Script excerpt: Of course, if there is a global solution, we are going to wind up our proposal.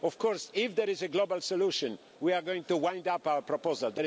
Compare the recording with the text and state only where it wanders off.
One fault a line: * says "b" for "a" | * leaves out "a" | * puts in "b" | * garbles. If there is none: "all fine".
all fine